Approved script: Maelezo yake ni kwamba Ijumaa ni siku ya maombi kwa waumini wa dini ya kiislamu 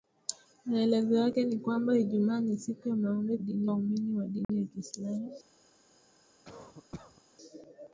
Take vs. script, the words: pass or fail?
fail